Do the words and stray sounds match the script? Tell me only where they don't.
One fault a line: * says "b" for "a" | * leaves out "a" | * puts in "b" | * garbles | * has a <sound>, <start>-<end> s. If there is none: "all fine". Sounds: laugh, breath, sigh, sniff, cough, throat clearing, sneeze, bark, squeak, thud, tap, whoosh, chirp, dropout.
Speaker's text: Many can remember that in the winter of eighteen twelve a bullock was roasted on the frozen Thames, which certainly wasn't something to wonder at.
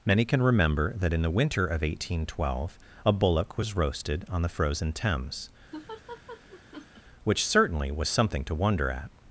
* has a laugh, 5.7-7.0 s
* says "was" for "wasn't"